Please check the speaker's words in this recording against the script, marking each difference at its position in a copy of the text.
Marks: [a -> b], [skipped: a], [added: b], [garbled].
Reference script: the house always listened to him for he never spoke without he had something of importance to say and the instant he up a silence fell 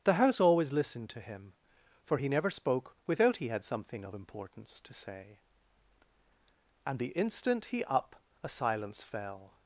the house always listened to him for he never spoke without he had something of importance to say and the instant he up a silence fell